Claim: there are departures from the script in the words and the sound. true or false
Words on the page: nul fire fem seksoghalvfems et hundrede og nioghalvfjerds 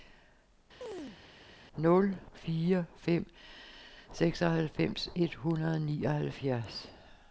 true